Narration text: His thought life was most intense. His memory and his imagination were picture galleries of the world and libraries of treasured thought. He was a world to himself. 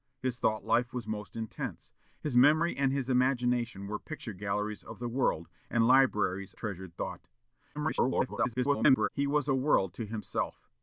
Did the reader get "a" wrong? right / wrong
right